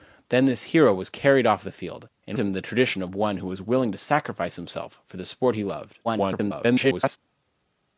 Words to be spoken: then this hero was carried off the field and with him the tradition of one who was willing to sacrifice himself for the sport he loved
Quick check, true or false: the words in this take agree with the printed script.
false